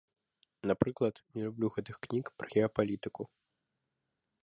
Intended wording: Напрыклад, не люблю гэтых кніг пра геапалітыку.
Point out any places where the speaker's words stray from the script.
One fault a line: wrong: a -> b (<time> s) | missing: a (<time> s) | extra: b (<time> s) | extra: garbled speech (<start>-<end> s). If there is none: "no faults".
no faults